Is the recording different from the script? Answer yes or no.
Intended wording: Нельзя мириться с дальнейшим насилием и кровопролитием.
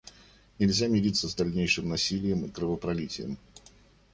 no